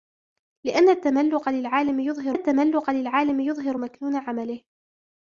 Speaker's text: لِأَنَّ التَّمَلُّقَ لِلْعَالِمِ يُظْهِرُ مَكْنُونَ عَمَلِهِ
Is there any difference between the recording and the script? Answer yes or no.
yes